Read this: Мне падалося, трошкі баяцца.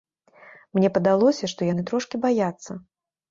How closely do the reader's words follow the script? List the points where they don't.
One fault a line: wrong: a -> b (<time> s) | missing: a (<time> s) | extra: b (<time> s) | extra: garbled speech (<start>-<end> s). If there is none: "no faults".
extra: што яны (1.5 s)